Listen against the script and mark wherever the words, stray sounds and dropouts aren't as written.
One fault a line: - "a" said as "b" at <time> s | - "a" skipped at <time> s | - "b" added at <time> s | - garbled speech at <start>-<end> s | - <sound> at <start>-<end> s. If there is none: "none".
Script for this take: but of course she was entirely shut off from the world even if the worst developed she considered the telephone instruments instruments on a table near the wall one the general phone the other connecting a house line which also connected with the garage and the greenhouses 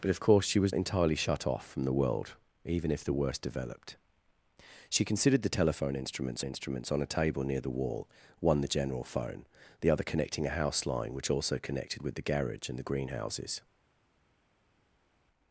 none